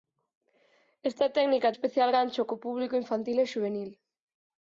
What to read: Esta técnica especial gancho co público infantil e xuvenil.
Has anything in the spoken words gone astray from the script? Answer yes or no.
no